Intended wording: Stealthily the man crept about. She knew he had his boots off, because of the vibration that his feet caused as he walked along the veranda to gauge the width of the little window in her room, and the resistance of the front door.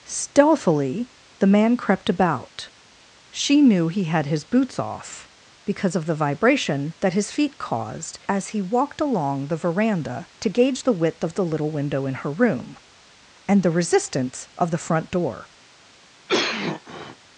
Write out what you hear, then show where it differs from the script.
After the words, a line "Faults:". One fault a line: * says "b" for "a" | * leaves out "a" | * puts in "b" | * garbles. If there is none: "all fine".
Stealthily the man crept about. She knew he had his boots off, because of the vibration that his feet caused as he walked along the veranda to gauge the width of the little window in her room, and the resistance of the front door.
Faults:
all fine